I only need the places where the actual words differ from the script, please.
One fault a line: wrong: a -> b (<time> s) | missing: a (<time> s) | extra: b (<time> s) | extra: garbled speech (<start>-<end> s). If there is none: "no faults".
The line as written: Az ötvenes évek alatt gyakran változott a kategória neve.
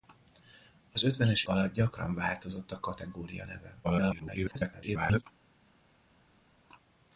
missing: évek (1.4 s)
extra: garbled speech (3.8-5.2 s)